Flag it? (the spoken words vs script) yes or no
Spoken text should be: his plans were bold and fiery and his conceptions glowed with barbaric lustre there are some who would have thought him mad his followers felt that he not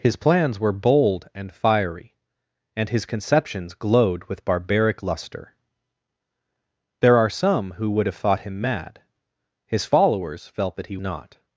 no